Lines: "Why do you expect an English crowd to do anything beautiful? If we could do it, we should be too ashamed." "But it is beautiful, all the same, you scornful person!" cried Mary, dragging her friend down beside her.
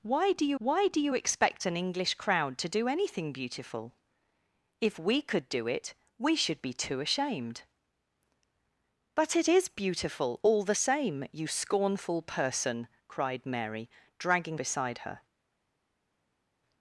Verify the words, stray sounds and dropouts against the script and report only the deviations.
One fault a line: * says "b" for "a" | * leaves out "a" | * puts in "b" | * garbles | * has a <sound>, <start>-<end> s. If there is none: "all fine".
* puts in "why do you"
* leaves out "her friend down"